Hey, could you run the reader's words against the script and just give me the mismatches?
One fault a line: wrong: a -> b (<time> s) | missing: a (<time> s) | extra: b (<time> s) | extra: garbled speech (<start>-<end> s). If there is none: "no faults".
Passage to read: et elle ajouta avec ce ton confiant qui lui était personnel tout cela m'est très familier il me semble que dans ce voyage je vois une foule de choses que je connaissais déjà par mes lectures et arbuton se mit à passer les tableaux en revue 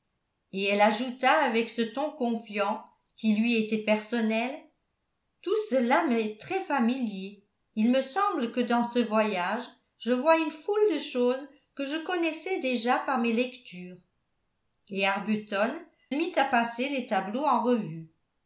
missing: se (15.7 s)